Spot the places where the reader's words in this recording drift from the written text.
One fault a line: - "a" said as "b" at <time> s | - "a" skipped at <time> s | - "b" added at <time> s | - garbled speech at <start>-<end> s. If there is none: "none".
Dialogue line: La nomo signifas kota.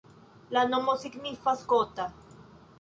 none